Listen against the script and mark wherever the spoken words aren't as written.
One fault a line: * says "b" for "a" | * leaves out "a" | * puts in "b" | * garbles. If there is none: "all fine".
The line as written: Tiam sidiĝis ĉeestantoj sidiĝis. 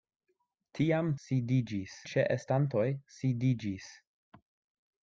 all fine